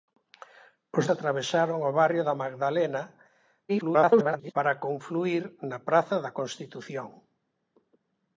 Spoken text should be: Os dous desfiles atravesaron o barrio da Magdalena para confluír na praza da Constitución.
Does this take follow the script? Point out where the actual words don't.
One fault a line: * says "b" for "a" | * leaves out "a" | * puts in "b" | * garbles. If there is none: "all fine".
* leaves out "dous desfiles"
* garbles